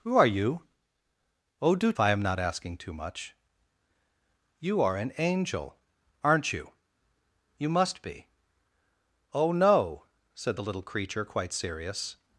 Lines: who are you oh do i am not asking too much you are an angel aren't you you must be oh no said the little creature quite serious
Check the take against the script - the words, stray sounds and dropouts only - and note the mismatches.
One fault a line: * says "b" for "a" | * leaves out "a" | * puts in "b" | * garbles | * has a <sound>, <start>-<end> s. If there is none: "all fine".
all fine